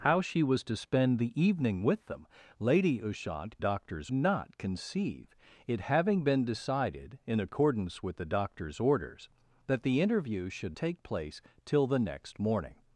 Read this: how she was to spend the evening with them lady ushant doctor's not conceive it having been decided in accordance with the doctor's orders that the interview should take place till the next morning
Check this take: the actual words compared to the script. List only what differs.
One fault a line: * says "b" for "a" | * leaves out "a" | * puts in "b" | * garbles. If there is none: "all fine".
all fine